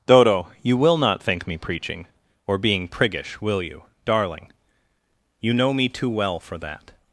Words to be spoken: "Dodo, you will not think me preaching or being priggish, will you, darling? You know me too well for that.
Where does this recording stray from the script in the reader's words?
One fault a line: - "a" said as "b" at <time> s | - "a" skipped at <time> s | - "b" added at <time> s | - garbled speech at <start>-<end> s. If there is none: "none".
none